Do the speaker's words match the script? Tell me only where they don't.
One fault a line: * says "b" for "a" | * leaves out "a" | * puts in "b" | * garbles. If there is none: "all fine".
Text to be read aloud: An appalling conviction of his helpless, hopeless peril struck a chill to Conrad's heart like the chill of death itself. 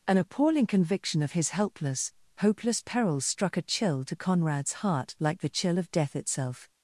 all fine